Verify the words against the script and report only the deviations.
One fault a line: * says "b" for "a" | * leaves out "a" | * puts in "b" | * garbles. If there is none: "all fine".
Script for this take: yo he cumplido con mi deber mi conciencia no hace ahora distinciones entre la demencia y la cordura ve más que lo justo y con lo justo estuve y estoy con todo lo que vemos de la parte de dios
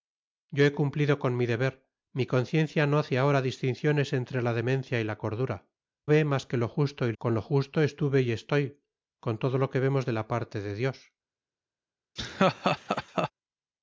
all fine